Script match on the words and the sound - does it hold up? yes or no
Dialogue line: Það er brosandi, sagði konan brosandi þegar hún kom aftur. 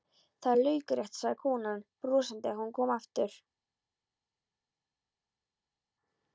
no